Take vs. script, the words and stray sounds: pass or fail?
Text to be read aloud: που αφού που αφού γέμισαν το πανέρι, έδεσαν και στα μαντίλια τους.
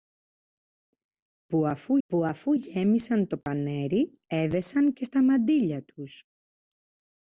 fail